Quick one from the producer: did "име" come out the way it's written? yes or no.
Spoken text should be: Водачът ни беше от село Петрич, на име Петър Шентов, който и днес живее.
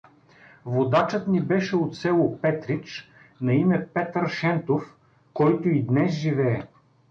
yes